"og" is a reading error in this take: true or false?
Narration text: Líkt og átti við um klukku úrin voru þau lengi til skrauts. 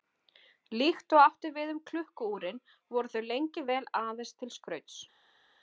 false